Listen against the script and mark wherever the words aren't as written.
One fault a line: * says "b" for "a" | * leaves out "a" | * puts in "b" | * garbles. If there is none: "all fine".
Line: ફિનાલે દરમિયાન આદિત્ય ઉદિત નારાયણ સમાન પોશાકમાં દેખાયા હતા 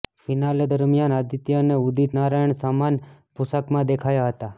* puts in "અને"